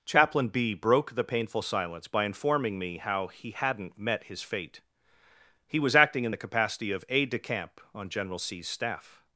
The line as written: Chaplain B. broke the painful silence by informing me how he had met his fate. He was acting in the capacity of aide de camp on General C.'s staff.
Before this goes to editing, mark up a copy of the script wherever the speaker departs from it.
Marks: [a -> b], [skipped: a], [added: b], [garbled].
Chaplain B. broke the painful silence by informing me how he [had -> hadn't] met his fate. He was acting in the capacity of aide de camp on General C.'s staff.